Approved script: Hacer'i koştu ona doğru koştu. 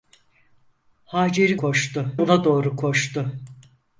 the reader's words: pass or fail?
pass